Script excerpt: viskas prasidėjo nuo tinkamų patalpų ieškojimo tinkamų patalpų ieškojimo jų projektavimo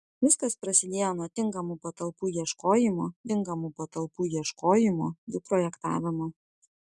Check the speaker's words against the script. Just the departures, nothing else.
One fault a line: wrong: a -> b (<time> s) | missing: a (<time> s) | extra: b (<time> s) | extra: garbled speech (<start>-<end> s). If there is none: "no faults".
no faults